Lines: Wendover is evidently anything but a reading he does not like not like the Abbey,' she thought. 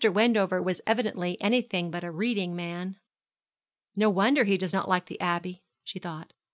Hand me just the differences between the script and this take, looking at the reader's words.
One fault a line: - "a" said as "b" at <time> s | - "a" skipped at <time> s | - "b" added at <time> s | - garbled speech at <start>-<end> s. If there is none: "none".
- "is" said as "was" at 0.6 s
- "man No wonder" added at 2.5 s
- "not like" skipped at 5.1 s